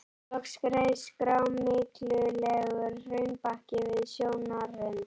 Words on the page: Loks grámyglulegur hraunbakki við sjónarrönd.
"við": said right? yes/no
yes